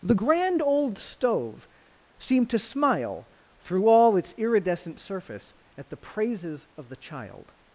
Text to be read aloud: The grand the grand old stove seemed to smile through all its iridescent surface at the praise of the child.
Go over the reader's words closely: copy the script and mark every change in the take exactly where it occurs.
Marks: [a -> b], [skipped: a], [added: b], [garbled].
The grand [skipped: the grand] old stove seemed to smile through all its iridescent surface at the [praise -> praises] of the child.